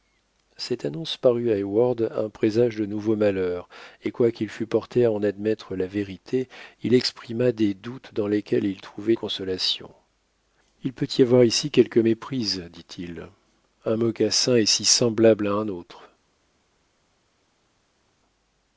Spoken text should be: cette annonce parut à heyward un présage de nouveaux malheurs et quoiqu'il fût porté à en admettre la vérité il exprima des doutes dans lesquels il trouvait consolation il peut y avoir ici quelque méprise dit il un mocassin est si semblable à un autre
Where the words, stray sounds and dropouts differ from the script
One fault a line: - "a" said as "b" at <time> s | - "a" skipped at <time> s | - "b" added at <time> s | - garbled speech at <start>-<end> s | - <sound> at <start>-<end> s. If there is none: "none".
none